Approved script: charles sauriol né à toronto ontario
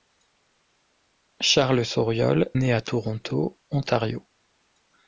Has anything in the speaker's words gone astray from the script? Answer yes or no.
no